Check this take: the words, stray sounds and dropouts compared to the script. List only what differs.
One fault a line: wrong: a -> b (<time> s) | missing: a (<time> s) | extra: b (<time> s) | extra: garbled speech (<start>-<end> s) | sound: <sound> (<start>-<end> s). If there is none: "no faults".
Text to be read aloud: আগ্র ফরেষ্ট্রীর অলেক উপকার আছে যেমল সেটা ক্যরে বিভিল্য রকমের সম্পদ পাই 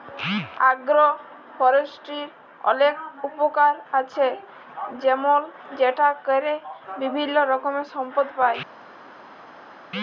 no faults